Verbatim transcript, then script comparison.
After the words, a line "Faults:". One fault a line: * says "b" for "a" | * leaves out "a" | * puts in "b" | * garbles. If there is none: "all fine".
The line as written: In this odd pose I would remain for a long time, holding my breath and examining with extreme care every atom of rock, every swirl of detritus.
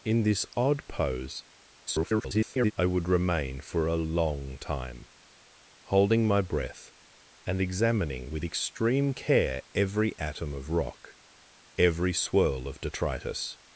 In this odd pose [garbled] I would remain for a long time, holding my breath and examining with extreme care every atom of rock, every swirl of detritus.
Faults:
* garbles